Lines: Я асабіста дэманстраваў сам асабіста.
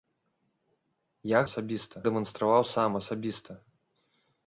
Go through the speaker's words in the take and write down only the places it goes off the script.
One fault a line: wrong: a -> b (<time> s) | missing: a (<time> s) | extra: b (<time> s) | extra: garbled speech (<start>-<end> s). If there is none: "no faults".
no faults